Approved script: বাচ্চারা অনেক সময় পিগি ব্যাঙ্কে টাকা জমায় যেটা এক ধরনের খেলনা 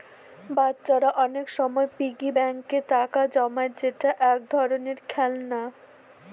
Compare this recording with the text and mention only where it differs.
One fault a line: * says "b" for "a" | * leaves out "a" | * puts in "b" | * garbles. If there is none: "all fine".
all fine